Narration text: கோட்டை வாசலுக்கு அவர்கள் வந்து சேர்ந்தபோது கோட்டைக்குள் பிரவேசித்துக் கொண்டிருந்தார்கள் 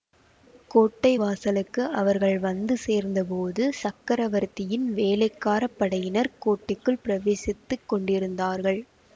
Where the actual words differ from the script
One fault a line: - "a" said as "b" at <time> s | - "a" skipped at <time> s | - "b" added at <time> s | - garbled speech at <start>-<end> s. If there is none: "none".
- "சக்கரவர்த்தியின் வேளைக்கார படையினர்" added at 3.8 s